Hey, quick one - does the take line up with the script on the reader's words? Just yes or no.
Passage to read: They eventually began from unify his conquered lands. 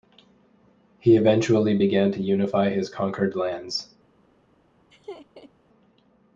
no